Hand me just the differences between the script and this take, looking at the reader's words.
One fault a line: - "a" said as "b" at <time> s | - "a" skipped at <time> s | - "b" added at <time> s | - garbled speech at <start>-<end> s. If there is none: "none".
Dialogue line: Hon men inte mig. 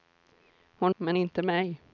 none